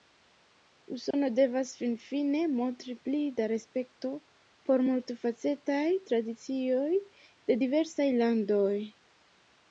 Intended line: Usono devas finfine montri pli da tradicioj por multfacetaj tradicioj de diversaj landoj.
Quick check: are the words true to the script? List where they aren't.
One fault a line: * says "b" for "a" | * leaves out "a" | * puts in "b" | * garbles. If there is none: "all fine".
* says "respekto" for "tradicioj"